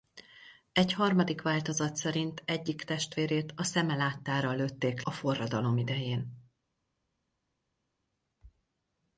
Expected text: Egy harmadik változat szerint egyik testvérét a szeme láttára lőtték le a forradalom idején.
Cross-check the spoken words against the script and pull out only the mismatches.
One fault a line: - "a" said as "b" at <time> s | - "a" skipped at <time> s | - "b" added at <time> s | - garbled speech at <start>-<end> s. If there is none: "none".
- "le" skipped at 5.0 s